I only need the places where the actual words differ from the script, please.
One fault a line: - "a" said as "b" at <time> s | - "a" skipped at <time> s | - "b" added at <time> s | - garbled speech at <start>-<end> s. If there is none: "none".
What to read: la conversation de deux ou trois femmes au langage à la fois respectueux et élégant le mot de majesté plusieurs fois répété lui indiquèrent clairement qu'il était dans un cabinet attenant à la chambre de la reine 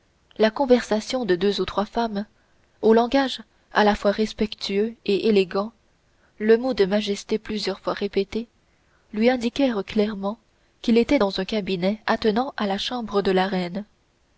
none